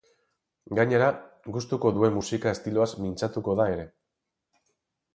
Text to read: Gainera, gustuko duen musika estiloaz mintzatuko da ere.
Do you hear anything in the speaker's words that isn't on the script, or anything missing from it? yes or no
no